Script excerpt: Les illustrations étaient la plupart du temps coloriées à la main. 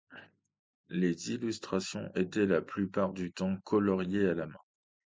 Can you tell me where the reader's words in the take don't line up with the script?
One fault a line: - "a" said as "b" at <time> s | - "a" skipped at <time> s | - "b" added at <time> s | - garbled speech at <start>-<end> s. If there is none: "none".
none